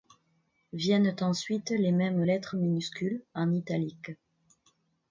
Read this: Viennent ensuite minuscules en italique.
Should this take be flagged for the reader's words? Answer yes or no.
yes